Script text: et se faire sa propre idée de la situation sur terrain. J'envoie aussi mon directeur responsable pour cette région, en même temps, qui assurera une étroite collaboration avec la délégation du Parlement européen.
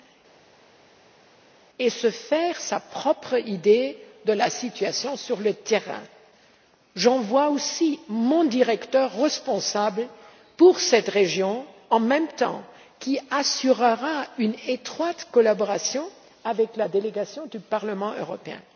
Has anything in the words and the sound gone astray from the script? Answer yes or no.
yes